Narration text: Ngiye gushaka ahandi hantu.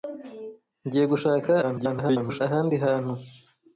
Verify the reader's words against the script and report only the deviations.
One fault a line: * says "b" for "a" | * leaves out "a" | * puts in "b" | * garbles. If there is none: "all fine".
* garbles